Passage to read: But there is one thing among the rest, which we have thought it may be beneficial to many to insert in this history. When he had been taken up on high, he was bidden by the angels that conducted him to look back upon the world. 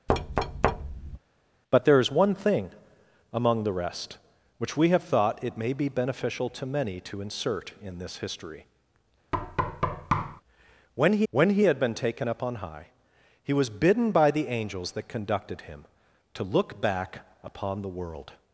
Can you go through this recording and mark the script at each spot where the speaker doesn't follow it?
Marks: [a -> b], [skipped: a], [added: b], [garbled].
But there is one thing among the rest, which we have thought it may be beneficial to many to insert in this history. When he [added: when he] had been taken up on high, he was bidden by the angels that conducted him to look back upon the world.